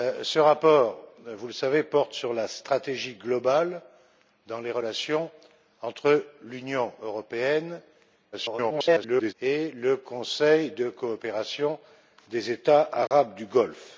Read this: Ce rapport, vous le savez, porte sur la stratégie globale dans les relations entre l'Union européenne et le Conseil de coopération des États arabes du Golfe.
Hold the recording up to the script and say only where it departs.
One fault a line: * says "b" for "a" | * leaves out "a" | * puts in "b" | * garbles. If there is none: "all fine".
* garbles